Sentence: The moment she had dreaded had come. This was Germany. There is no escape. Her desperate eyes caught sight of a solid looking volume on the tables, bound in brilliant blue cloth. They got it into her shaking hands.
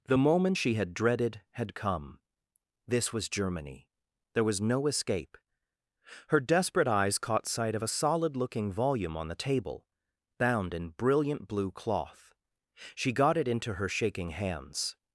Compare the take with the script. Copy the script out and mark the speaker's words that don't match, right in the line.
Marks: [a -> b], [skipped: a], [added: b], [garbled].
The moment she had dreaded had come. This was Germany. There [is -> was] no escape. Her desperate eyes caught sight of a solid looking volume on the [tables, -> table] bound in brilliant blue cloth. [They -> She] got it into her shaking hands.